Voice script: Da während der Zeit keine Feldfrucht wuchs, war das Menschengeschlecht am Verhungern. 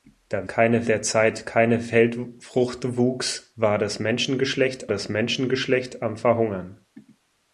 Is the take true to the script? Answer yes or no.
no